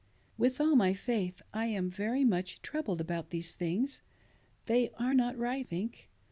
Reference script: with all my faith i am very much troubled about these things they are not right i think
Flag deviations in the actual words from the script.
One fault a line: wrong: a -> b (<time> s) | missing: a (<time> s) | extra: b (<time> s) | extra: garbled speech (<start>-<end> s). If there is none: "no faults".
missing: i (5.7 s)